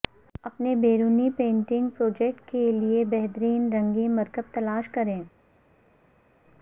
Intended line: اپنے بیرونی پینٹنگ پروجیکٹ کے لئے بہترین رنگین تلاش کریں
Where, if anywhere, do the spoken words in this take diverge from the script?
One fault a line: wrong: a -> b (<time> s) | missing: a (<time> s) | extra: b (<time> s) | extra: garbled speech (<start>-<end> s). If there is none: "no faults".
extra: مرکب (4.2 s)